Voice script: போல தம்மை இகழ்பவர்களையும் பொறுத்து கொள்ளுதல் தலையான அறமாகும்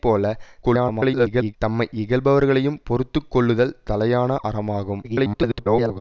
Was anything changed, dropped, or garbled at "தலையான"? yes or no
no